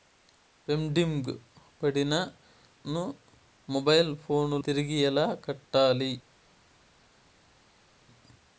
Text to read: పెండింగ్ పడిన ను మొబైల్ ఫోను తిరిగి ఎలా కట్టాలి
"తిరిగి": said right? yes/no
yes